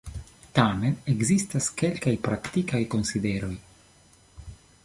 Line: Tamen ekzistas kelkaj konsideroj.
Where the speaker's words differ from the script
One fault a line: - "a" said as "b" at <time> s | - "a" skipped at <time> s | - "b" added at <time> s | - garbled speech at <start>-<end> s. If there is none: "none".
- "praktikaj" added at 2.3 s